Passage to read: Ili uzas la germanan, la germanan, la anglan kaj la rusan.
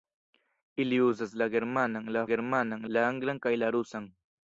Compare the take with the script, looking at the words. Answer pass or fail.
pass